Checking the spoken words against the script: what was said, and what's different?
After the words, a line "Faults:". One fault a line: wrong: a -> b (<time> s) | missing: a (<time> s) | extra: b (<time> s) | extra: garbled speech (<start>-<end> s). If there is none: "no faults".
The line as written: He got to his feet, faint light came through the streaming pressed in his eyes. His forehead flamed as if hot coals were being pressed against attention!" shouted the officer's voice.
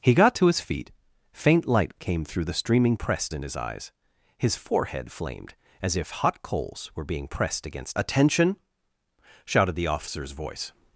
He got to his feet, faint light came through the streaming pressed in his eyes. His forehead flamed as if hot coals were being pressed against attention!" shouted the officer's voice.
Faults:
no faults